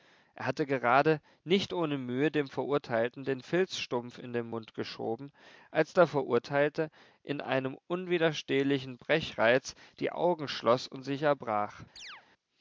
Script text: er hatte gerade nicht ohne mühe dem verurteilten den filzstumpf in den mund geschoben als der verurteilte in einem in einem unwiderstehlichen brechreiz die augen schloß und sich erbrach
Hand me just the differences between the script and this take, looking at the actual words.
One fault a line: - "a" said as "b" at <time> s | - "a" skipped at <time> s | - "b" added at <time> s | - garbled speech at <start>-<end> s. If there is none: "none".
- "in einem" skipped at 7.8 s